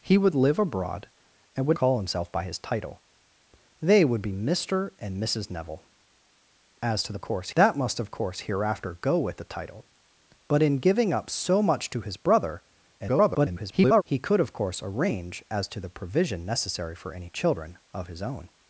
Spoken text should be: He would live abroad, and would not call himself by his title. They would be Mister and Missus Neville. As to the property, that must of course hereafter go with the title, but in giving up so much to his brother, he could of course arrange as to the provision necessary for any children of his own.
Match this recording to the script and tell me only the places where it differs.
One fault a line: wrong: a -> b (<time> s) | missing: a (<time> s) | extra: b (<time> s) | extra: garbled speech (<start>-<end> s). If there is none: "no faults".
missing: not (1.8 s)
wrong: property -> course (7.2 s)
extra: garbled speech (13.0-14.0 s)